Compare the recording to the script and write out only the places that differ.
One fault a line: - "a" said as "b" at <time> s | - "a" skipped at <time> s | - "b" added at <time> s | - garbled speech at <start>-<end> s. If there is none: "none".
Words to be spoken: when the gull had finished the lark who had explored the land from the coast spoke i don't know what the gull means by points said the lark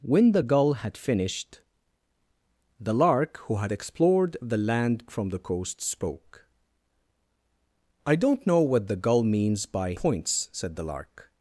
none